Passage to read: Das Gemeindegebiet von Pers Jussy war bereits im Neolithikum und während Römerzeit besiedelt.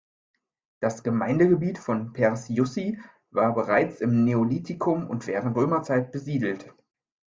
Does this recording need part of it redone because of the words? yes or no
no